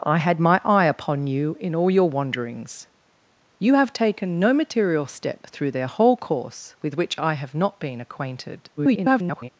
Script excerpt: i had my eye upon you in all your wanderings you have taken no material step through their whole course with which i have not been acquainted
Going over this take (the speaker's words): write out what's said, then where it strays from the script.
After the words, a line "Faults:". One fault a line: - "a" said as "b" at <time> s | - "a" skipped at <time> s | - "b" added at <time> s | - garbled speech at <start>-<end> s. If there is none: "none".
i had my eye upon you in all your wanderings you have taken no material step through their whole course with which i have not been acquainted [garbled]
Faults:
- garbled speech at 8.8-9.5 s